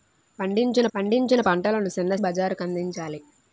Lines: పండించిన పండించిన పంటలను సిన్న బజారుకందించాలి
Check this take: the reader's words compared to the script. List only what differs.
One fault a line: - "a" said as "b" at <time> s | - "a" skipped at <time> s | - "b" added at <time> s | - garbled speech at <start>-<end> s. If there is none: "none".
none